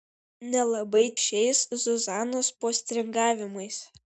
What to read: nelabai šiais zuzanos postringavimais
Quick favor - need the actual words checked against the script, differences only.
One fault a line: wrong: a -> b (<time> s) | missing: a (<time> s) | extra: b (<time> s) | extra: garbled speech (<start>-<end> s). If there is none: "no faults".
no faults